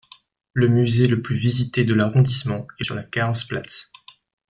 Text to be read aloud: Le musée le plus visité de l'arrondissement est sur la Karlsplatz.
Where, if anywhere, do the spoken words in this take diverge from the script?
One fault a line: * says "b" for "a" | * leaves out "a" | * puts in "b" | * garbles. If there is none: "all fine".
all fine